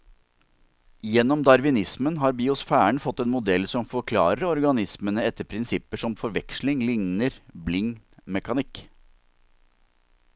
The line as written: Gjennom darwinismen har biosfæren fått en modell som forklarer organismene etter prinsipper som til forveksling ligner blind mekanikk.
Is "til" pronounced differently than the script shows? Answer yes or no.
yes